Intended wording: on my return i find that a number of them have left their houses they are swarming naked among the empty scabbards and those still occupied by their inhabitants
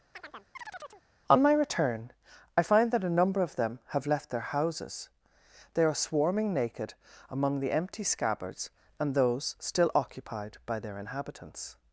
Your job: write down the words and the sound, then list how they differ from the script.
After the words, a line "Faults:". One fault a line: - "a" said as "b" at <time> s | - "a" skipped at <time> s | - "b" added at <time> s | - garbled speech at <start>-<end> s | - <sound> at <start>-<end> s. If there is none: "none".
on my return i find that a number of them have left their houses they are swarming naked among the empty scabbards and those still occupied by their inhabitants
Faults:
- chirp at 0.1-1.0 s